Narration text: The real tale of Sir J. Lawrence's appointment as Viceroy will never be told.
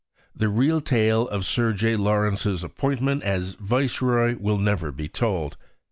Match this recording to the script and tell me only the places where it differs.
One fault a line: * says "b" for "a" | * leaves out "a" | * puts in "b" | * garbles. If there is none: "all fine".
all fine